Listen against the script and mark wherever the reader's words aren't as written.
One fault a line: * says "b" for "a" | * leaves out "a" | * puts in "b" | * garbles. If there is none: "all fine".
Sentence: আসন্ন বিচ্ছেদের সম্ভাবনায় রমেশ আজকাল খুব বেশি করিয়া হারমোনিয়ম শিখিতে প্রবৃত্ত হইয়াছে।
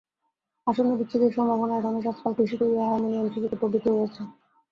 * leaves out "খুব"